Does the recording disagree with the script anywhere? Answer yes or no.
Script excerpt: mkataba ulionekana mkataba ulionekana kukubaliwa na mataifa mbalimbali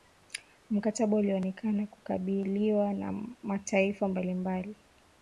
yes